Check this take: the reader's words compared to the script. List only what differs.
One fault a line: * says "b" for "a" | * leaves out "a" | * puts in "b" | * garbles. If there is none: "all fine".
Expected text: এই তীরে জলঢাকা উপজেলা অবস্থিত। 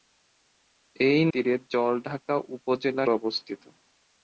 all fine